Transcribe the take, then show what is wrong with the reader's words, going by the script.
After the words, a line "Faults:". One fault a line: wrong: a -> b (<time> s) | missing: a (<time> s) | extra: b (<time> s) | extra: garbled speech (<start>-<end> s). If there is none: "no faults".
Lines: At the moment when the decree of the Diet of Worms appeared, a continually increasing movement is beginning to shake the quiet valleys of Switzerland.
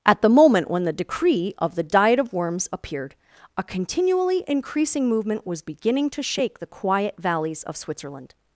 At the moment when the decree of the Diet of Worms appeared, a continually increasing movement was beginning to shake the quiet valleys of Switzerland.
Faults:
wrong: is -> was (5.5 s)